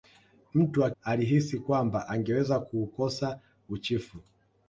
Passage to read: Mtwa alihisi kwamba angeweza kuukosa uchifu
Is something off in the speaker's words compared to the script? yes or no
no